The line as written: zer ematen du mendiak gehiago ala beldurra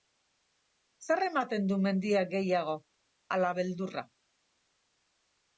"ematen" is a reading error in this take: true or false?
false